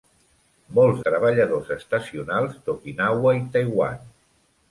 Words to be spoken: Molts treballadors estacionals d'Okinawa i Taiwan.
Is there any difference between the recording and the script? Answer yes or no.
no